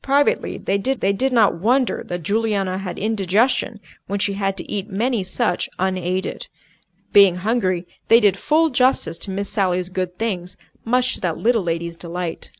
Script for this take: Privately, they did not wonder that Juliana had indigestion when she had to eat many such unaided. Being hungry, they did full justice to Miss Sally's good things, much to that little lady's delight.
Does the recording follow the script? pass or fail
fail